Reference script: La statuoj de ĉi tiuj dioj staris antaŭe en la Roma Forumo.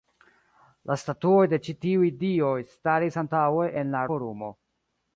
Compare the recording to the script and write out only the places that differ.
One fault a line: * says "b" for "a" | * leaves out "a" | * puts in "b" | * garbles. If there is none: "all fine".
* leaves out "Roma"